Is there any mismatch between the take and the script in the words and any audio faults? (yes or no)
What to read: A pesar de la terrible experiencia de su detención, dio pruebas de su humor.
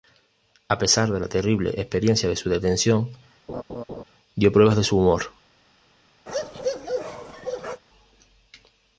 yes